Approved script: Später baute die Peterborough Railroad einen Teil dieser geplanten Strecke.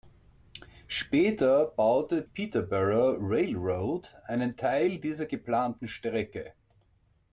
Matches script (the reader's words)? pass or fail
fail